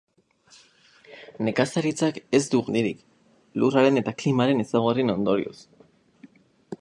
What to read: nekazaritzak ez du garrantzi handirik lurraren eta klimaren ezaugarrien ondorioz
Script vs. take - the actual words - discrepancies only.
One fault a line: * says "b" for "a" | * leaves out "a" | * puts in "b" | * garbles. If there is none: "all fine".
* leaves out "garrantzi"